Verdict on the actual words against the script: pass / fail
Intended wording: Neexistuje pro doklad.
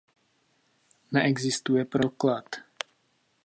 pass